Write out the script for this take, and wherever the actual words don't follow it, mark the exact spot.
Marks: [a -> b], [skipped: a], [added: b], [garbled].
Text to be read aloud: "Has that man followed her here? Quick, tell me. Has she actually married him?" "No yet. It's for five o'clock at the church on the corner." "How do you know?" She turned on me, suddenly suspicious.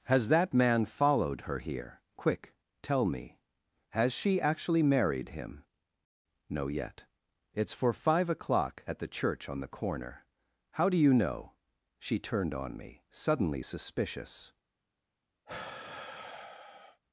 "Has that man followed her here? Quick, tell me. Has she actually married him?" "No yet. It's for five o'clock at the church on the corner." "How do you know?" She turned on me, suddenly suspicious.